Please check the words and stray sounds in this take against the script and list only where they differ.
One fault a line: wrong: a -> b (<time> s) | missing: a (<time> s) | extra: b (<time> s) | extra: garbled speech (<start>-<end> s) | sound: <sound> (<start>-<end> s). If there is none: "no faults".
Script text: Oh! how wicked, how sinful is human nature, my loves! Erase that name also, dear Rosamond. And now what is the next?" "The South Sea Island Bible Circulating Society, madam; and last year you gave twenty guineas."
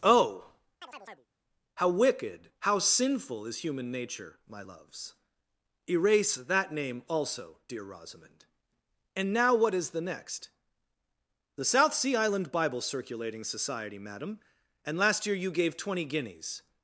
sound: chirp (0.8-1.3 s)